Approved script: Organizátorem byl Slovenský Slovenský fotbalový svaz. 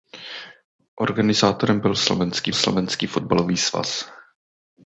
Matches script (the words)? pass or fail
pass